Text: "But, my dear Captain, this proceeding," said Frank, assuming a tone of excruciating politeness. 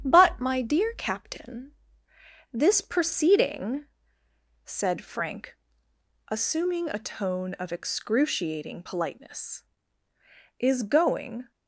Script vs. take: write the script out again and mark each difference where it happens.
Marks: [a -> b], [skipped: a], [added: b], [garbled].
"But, my dear Captain, this proceeding," said Frank, assuming a tone of excruciating politeness. [added: Is going]